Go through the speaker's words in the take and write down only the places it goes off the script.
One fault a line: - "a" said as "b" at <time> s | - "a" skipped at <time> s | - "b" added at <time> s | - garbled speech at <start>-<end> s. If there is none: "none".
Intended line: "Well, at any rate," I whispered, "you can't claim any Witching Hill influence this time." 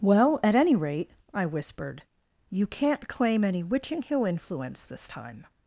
none